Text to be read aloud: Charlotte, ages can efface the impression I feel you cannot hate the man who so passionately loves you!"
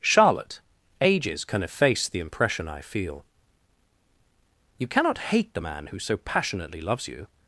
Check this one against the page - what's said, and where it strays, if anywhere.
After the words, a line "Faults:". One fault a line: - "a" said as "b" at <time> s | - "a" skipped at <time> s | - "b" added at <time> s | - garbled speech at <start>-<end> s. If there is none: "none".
Charlotte, ages can efface the impression I feel you cannot hate the man who so passionately loves you!"
Faults:
none